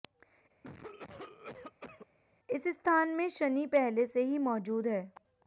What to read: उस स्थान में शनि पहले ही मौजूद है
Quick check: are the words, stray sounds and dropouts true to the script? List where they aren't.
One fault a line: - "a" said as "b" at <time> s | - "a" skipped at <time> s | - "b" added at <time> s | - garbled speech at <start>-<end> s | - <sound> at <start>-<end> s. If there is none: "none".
- cough at 0.6-2.1 s
- "उस" said as "इस" at 2.5 s
- "से" added at 4.1 s